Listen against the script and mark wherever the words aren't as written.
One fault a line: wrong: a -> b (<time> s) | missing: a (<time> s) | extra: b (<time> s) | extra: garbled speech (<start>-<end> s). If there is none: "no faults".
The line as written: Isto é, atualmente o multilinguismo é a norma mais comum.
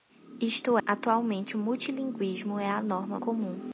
missing: é (0.8 s)
missing: mais (3.2 s)